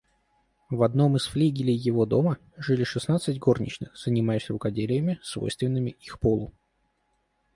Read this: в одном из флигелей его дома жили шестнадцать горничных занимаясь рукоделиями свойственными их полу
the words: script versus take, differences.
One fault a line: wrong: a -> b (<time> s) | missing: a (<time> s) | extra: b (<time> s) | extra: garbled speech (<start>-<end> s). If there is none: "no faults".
no faults